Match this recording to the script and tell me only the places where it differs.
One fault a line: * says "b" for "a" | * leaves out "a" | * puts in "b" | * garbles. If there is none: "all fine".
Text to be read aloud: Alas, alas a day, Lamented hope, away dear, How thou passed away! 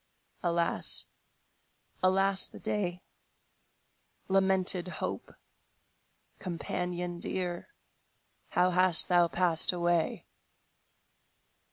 * says "the" for "a"
* says "companion" for "away"
* puts in "hast"